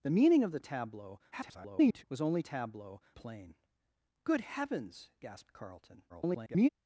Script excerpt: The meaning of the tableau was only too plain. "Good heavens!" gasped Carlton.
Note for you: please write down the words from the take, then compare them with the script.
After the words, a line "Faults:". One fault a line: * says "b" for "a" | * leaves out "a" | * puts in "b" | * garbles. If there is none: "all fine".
The meaning of the tableau [garbled] was only tableau plain. "Good heavens!" gasped Carlton. [garbled]
Faults:
* garbles
* says "tableau" for "too"
* garbles